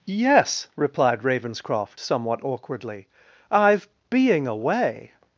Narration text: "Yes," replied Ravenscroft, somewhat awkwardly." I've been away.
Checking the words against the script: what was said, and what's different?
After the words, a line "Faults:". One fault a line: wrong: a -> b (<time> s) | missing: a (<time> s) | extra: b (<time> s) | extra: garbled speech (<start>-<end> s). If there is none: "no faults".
"Yes," replied Ravenscroft, somewhat awkwardly." I've being away.
Faults:
wrong: been -> being (4.1 s)